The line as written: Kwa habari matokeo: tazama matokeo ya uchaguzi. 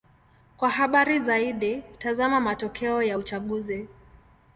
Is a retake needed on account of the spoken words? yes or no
yes